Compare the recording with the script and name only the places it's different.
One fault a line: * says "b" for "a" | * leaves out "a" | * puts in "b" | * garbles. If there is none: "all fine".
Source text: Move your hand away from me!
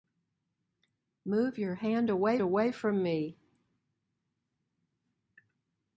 * puts in "away"